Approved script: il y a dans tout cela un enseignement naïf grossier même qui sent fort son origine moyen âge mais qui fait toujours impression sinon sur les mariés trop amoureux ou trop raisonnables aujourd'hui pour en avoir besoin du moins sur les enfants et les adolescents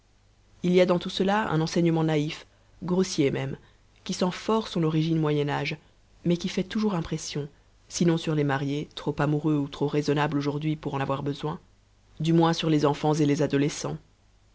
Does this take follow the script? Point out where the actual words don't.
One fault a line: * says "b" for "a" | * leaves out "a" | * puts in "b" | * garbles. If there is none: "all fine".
all fine